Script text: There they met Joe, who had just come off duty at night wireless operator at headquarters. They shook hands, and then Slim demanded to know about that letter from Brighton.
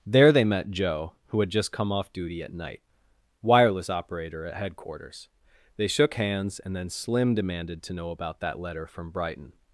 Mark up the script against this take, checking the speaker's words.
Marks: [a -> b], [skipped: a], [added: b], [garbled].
There they met Joe, who had just come off duty at night wireless operator at headquarters. They shook hands, and then Slim demanded to know about that letter from Brighton.